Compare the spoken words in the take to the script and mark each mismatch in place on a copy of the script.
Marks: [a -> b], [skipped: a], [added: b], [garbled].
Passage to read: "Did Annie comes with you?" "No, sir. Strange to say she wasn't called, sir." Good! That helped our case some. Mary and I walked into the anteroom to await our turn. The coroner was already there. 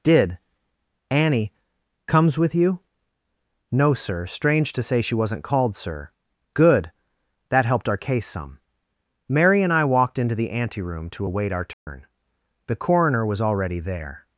"Did Annie comes with you?" "No, sir. Strange to say she wasn't called, sir." Good! That helped our case some. Mary and I walked into the anteroom to await our turn. The coroner was already there.